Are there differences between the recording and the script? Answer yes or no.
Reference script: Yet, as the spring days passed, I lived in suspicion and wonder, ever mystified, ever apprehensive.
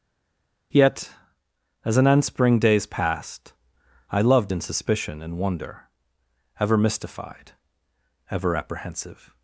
yes